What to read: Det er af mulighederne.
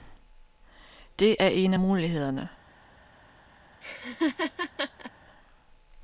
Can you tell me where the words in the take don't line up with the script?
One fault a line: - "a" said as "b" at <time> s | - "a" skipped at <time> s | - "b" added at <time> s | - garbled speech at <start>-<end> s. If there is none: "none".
- "en" added at 1.5 s